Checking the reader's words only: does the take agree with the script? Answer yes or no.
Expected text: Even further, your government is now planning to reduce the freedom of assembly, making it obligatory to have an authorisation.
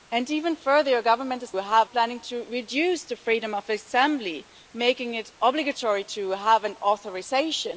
no